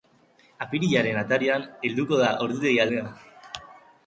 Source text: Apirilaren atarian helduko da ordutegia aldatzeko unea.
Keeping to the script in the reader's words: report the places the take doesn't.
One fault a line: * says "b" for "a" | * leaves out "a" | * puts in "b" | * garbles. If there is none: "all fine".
* leaves out "aldatzeko"